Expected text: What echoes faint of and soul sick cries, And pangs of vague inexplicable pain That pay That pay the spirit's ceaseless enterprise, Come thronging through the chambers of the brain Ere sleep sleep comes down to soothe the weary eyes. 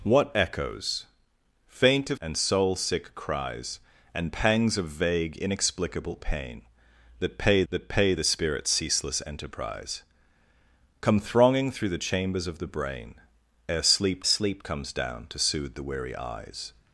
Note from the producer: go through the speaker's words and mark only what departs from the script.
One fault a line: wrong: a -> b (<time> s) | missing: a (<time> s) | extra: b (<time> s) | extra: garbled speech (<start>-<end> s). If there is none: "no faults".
no faults